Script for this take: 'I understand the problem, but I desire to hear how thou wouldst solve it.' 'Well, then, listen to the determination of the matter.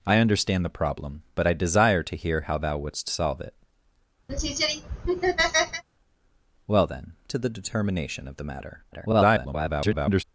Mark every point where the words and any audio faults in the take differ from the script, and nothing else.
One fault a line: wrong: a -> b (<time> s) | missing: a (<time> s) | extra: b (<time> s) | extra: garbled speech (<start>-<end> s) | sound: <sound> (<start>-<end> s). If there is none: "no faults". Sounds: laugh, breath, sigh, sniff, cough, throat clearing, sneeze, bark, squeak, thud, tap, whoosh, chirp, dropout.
sound: laugh (4.3-5.8 s)
missing: listen (7.1 s)
extra: garbled speech (8.9-10.2 s)